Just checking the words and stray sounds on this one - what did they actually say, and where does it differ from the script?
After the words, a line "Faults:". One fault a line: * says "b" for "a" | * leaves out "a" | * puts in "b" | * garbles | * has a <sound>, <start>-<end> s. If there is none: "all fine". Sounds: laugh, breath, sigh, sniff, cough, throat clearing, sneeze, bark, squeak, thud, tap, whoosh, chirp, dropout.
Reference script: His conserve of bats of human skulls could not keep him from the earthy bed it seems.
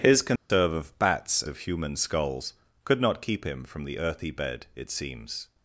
His conserve of bats of human skulls could not keep him from the earthy bed it seems.
Faults:
* has a dropout, 0.4-0.5 s